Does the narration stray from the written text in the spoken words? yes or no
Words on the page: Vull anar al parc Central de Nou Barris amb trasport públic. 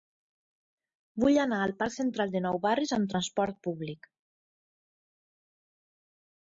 no